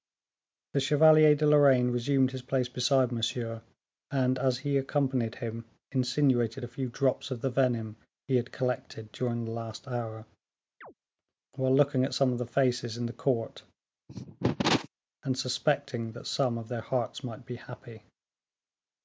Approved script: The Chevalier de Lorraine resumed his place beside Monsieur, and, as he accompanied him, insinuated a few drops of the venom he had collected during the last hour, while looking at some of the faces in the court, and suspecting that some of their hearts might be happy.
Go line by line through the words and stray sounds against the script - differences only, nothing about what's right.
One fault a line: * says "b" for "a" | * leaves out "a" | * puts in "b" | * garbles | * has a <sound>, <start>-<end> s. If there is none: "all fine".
* has a chirp, 10.8-10.9 s
* has a cough, 14.1-14.9 s